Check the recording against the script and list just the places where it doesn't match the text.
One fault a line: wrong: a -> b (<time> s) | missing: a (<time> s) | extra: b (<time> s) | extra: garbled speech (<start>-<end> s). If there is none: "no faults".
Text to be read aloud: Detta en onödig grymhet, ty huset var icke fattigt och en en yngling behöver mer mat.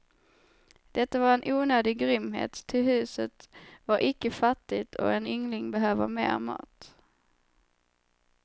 extra: var (1.2 s)
missing: en (5.3 s)